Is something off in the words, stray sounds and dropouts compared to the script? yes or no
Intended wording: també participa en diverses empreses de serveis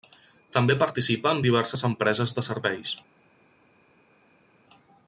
no